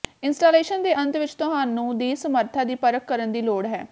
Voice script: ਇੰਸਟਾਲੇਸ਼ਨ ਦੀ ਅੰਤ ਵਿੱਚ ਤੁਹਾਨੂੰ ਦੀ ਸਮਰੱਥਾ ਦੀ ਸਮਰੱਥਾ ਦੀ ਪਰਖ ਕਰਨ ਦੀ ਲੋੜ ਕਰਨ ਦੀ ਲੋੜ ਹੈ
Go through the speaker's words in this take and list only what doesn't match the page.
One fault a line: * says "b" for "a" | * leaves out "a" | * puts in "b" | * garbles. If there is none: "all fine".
* says "ਦੇ" for "ਦੀ"
* leaves out "ਸਮਰੱਥਾ ਦੀ"
* leaves out "ਕਰਨ ਦੀ ਲੋੜ"